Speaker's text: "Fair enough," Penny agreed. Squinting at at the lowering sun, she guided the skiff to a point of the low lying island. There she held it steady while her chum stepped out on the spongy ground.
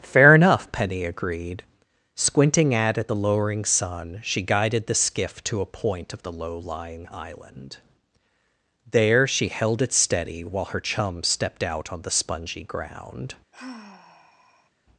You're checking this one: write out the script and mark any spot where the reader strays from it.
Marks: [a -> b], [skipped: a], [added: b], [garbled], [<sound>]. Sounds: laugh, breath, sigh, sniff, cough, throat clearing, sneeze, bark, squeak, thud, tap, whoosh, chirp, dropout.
"Fair enough," Penny agreed. Squinting at at the lowering sun, she guided the skiff to a point of the low lying island. There she held it steady while her chum stepped out on the spongy ground. [sigh]